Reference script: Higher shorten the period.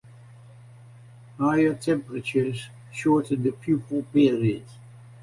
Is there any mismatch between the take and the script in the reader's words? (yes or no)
yes